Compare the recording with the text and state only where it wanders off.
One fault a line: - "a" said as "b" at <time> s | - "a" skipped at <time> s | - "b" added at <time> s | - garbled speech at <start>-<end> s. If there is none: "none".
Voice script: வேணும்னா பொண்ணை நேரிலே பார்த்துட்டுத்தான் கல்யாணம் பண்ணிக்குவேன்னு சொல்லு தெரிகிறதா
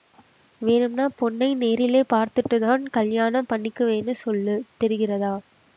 none